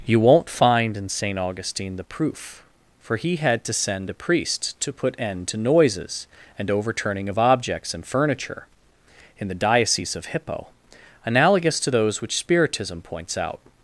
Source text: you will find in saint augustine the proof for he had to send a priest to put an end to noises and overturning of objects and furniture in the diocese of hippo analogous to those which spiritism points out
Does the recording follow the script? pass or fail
fail